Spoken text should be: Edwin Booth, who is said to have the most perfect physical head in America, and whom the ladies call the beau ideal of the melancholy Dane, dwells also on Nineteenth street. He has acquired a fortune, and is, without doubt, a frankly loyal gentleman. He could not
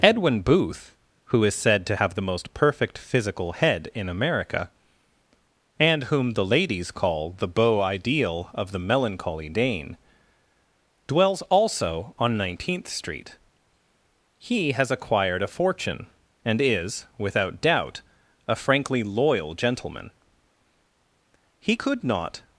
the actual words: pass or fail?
pass